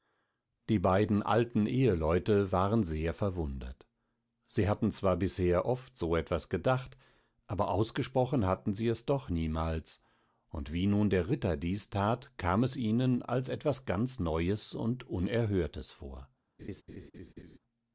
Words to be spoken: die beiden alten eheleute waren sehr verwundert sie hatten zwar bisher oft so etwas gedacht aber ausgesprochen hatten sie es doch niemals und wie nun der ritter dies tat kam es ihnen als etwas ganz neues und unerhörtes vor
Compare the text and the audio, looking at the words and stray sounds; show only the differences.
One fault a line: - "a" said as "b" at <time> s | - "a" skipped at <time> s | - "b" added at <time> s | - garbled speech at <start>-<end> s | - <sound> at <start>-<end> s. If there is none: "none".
- laugh at 16.6-17.6 s